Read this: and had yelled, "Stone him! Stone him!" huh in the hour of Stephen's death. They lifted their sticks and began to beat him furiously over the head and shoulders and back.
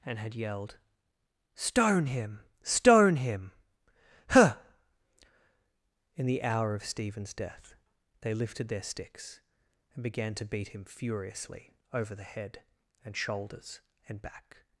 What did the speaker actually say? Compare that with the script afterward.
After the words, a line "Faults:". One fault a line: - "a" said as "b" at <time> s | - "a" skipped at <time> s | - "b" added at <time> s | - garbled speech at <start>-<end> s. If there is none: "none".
and had yelled, "Stone him! Stone him!" huh in the hour of Stephen's death. They lifted their sticks and began to beat him furiously over the head and shoulders and back.
Faults:
none